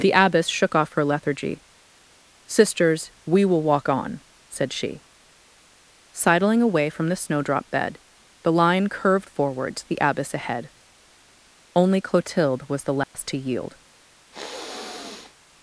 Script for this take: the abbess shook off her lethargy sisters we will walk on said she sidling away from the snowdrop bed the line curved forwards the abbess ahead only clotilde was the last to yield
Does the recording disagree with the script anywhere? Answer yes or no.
no